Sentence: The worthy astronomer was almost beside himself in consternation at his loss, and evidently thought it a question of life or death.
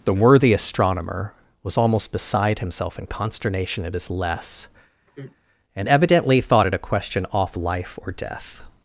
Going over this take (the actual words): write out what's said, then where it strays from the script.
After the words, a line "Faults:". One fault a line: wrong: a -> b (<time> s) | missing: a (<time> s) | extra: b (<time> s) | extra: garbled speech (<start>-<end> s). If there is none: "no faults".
The worthy astronomer was almost beside himself in consternation at his less, and evidently thought it a question off life or death.
Faults:
wrong: loss -> less (4.1 s)
wrong: of -> off (7.3 s)